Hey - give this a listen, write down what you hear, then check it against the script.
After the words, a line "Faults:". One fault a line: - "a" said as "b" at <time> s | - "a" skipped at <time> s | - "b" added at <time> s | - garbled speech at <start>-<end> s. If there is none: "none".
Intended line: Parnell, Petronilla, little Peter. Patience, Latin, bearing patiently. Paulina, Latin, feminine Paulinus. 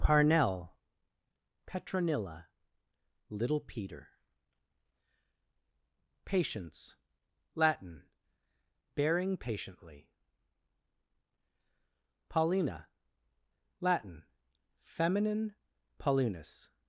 Parnell, Petronilla, little Peter. Patience, Latin, bearing patiently. Paulina, Latin, feminine Paulinus.
Faults:
none